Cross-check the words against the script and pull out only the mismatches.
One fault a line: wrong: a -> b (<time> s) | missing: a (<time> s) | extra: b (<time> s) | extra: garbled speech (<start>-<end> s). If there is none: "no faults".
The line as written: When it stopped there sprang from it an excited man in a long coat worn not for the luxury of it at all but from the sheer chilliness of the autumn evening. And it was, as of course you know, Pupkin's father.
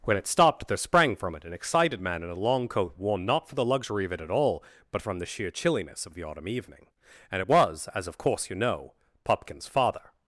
no faults